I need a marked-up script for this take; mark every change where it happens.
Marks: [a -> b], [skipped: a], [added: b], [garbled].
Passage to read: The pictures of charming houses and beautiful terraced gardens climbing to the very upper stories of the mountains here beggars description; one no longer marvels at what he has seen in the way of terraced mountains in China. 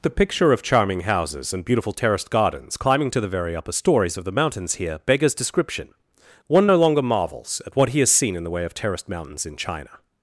The [pictures -> picture] of charming houses and beautiful terraced gardens climbing to the very upper stories of the mountains here beggars description; one no longer marvels at what he has seen in the way of terraced mountains in China.